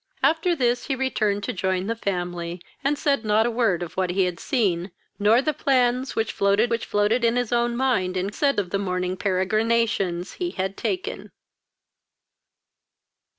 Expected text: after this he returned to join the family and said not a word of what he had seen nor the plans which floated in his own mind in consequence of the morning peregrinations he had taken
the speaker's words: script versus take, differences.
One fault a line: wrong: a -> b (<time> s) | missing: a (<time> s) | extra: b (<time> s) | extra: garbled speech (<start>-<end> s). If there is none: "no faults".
extra: which floated (6.7 s)
wrong: consequence -> said (8.3 s)